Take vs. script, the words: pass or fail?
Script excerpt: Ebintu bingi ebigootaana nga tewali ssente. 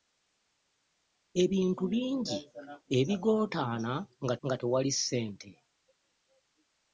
fail